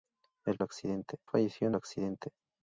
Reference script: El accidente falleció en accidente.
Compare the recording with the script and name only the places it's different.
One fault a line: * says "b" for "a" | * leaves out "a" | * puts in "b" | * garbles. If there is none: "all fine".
all fine